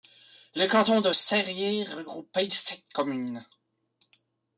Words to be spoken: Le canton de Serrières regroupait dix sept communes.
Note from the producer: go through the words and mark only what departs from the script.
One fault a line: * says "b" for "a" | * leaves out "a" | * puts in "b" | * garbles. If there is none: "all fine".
* leaves out "dix"